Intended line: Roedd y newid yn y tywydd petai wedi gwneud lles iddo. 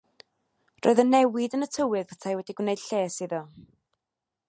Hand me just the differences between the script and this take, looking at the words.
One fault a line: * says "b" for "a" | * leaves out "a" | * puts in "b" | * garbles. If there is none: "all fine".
all fine